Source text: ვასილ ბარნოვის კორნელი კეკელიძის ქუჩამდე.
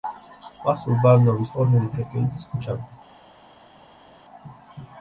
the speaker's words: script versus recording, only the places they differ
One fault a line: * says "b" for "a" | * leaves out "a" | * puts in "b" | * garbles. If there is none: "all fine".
all fine